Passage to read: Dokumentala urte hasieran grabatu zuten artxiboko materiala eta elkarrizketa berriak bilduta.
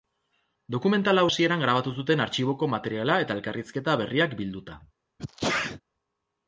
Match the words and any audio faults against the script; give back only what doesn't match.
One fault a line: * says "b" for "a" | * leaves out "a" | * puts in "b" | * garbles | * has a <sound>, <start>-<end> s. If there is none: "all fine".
* leaves out "urte"
* has a sneeze, 5.2-5.8 s